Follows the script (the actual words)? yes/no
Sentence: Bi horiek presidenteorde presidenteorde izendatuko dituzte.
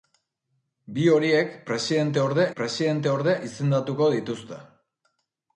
yes